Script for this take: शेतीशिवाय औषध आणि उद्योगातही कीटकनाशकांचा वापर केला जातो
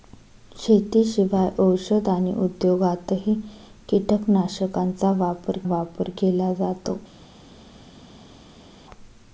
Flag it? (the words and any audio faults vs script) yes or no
yes